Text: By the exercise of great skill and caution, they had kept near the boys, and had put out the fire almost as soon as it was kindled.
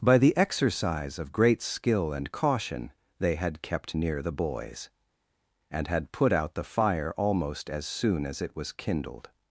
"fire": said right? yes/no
yes